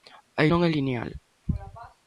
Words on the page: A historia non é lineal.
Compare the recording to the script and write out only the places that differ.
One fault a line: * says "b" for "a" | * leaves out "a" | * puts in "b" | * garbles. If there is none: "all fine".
* leaves out "historia"